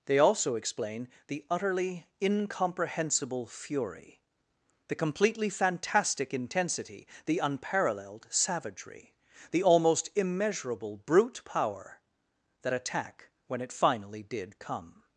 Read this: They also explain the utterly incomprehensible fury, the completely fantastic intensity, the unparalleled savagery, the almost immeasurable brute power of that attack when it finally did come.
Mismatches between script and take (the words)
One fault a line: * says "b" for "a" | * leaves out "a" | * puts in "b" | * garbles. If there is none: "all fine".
* leaves out "of"